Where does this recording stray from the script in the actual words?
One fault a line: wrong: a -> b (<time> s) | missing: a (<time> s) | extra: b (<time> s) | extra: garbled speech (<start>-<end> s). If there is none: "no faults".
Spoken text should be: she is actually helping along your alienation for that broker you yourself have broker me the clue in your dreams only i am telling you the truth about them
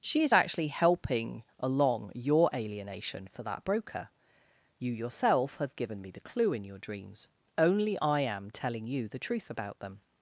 wrong: broker -> given (5.8 s)